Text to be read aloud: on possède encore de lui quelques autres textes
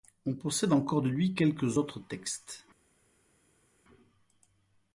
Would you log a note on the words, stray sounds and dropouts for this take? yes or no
no